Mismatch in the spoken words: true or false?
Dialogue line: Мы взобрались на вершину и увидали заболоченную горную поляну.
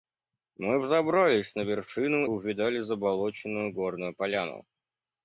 true